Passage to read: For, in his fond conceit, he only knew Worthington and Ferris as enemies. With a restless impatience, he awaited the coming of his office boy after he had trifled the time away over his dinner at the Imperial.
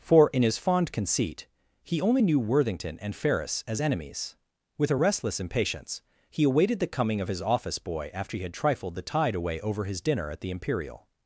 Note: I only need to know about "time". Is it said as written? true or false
false